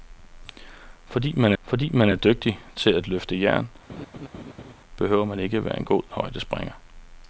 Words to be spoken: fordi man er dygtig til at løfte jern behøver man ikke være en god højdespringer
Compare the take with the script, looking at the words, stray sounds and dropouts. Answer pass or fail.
fail